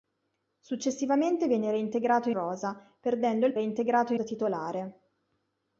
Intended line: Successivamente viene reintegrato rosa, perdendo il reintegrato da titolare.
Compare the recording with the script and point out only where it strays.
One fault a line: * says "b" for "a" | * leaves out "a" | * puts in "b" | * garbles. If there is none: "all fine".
all fine